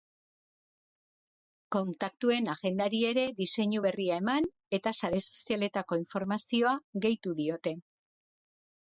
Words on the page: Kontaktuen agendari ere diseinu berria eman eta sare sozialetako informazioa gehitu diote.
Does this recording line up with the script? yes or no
yes